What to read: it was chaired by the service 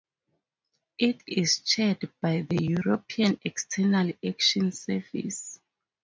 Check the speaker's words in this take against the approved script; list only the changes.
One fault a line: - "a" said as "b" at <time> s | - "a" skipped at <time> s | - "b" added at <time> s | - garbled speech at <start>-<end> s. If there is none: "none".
- "was" said as "is" at 1.3 s
- "european external action" added at 2.6 s